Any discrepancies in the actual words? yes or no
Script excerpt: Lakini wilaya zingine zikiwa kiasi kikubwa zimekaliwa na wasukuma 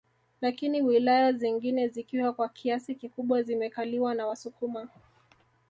yes